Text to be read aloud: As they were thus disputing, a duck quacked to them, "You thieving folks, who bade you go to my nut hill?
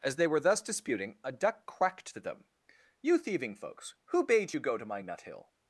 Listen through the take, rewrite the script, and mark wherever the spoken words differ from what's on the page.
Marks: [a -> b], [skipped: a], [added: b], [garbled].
As they were thus disputing, a duck quacked to them, "You thieving folks, who bade you go to my nut hill?